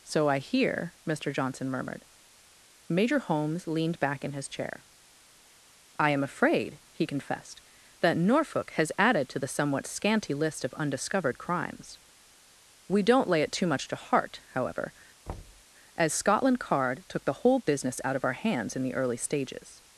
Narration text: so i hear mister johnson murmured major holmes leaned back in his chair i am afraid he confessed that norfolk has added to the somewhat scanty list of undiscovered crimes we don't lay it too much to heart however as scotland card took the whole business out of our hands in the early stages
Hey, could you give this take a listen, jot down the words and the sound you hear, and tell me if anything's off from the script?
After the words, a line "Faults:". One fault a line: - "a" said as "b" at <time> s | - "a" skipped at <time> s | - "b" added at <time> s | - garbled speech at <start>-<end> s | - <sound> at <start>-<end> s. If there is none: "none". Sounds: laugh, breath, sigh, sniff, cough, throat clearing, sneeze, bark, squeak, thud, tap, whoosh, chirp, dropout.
so i hear mister johnson murmured major holmes leaned back in his chair i am afraid he confessed that norfolk has added to the somewhat scanty list of undiscovered crimes we don't lay it too much to heart however as scotland card took the whole business out of our hands in the early stages
Faults:
- thud at 15.3-15.6 s